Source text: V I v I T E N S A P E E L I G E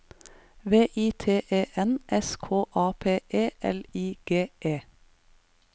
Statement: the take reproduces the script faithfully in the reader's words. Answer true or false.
false